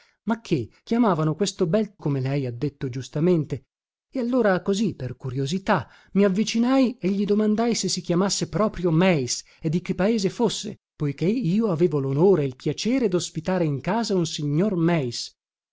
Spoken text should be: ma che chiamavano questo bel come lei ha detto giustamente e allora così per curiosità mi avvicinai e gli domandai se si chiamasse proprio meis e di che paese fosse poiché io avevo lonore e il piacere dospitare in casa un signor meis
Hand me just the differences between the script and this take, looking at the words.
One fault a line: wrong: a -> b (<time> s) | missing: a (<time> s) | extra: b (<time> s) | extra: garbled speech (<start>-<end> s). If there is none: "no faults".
no faults